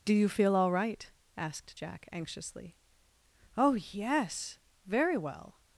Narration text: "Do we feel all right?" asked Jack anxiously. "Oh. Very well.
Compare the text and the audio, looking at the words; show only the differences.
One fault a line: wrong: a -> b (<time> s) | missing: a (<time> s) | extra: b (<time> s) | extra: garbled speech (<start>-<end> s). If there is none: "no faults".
wrong: we -> you (0.1 s)
extra: yes (3.7 s)